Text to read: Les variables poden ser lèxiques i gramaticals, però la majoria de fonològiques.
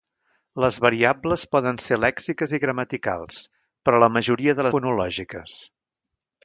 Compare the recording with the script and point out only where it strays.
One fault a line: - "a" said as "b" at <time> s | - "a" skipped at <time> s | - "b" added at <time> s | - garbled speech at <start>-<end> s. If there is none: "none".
none